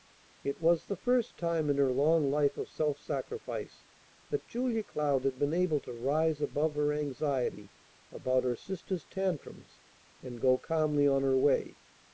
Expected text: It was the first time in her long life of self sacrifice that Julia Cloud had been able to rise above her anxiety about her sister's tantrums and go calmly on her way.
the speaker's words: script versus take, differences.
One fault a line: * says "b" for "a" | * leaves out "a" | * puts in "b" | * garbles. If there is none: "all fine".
all fine